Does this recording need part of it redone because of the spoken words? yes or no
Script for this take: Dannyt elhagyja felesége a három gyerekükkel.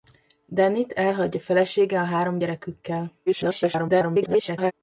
yes